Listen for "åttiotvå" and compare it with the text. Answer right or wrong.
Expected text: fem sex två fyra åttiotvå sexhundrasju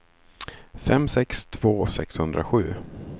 wrong